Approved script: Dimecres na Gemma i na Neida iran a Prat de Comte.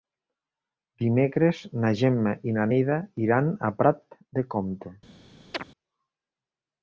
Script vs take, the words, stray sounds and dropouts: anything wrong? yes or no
yes